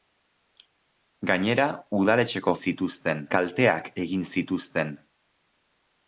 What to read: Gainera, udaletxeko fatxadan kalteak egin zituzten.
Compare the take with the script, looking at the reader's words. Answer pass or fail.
fail